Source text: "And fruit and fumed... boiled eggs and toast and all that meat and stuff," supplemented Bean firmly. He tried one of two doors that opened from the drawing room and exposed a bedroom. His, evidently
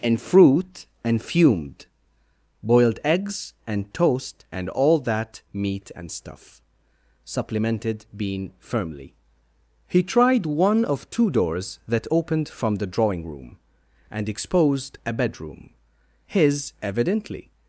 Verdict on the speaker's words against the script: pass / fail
pass